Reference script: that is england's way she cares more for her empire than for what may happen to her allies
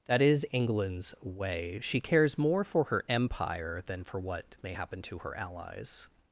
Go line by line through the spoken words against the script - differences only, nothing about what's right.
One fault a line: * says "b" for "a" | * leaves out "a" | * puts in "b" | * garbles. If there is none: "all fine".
all fine